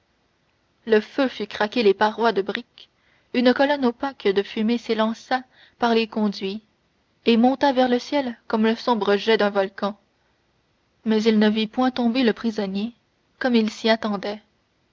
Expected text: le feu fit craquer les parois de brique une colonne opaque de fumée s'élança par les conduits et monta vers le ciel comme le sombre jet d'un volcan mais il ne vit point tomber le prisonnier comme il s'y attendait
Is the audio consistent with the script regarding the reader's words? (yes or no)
yes